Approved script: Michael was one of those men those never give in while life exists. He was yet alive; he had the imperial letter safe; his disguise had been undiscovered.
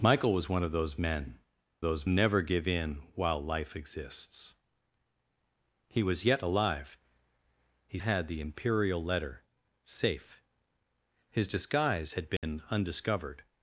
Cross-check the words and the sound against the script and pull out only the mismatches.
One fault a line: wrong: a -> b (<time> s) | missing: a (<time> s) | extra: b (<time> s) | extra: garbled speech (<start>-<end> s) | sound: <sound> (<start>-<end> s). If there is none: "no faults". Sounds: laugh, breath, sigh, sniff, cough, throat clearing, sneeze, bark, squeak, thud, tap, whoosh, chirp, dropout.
sound: dropout (12.4-12.4 s)